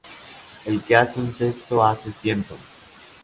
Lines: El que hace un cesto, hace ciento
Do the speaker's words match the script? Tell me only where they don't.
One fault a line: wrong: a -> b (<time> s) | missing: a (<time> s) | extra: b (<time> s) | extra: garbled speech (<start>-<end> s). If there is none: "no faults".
no faults